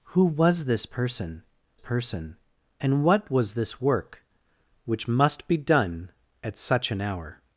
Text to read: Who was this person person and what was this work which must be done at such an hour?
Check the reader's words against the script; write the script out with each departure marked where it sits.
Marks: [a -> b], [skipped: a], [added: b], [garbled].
Who was this person person and what was this work which must be done at such an hour?